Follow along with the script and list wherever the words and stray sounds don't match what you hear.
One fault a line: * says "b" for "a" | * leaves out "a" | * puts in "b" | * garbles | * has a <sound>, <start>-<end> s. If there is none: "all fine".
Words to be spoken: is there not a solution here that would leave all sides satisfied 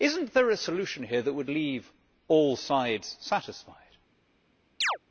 * has a chirp, 4.8-5.0 s